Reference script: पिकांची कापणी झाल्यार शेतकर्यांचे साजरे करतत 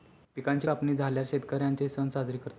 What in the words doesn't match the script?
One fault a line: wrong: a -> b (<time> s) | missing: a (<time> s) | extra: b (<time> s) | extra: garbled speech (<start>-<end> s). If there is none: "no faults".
extra: सण (1.9 s)